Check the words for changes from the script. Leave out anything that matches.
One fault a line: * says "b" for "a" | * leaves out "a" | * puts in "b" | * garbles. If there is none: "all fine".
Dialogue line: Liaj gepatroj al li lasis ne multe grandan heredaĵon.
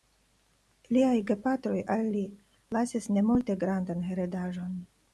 all fine